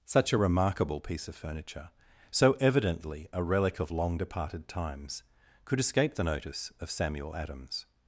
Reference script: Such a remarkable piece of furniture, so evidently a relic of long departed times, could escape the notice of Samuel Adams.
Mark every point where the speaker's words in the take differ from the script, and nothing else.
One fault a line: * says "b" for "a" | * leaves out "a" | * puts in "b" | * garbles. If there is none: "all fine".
all fine